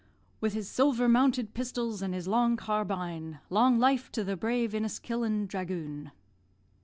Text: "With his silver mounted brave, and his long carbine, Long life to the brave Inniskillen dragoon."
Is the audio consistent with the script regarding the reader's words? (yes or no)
no